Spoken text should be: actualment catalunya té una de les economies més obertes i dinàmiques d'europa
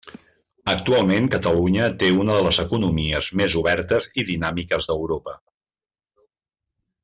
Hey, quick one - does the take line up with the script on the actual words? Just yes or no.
yes